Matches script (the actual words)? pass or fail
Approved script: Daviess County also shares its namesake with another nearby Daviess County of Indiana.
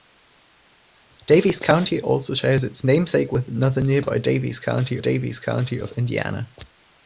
fail